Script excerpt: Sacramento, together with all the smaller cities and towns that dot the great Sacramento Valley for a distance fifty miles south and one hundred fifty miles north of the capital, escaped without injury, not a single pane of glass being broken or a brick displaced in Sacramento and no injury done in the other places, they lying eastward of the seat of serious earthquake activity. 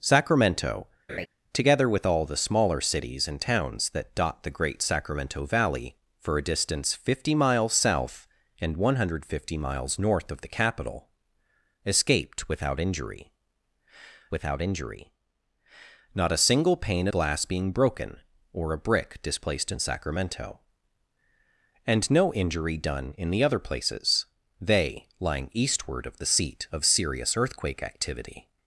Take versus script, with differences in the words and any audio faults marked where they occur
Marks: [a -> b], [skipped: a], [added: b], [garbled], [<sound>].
Sacramento, [laugh] together with all the smaller cities and towns that dot the great Sacramento Valley for a distance fifty miles south and one hundred fifty miles north of the capital, escaped without injury, [added: without injury] not a single pane [skipped: of] glass being broken or a brick displaced in Sacramento and no injury done in the other places, they lying eastward of the seat of serious earthquake activity.